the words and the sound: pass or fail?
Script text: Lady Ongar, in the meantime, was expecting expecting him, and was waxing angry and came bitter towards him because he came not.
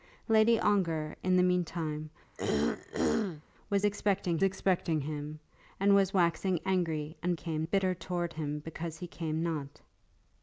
fail